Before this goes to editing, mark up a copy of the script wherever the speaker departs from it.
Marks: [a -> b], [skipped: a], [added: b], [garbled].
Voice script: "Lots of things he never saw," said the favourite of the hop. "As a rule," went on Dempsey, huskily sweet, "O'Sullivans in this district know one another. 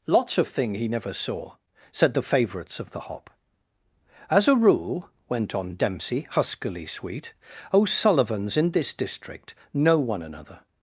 "Lots of [things -> thing] he never saw," said the [favourite -> favourites] of the hop. "As a rule," went on Dempsey, huskily sweet, "O'Sullivans in this district know one another.